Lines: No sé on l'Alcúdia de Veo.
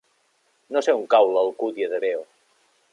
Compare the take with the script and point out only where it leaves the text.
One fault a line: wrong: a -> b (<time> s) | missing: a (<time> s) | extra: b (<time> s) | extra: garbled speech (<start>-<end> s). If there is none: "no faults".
extra: cau (1.1 s)